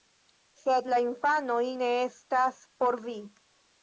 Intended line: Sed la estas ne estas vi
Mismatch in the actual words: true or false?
true